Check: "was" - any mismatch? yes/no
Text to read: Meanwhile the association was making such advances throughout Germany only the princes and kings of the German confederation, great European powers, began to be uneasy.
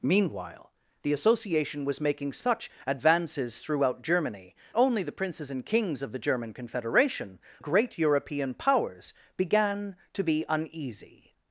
no